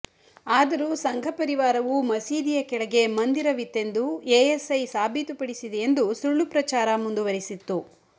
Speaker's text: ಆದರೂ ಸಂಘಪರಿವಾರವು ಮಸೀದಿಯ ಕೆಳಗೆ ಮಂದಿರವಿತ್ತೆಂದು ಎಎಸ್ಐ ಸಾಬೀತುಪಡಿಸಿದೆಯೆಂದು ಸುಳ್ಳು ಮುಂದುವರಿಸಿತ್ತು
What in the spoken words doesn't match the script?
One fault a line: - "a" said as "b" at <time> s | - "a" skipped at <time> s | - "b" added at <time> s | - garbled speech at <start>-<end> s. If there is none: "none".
- "ಪ್ರಚಾರ" added at 6.5 s